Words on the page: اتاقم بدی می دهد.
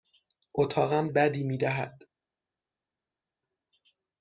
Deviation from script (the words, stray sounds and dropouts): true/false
false